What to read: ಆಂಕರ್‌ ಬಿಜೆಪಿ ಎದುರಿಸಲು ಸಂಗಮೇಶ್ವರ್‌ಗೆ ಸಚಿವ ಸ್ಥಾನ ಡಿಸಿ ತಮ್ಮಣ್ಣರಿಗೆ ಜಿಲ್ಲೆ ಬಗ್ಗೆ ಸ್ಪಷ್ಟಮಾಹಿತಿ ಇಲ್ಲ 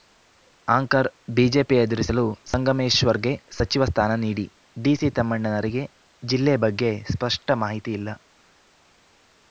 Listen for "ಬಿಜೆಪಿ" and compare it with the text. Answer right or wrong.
right